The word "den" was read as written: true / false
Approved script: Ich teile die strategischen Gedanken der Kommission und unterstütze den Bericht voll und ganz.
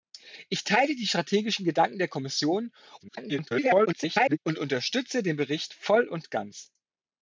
true